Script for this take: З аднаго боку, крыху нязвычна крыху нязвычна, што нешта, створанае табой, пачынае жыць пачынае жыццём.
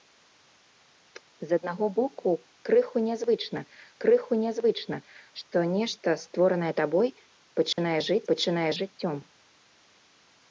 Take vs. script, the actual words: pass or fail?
pass